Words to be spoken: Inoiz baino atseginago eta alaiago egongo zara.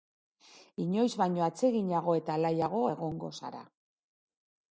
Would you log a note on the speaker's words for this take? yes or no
no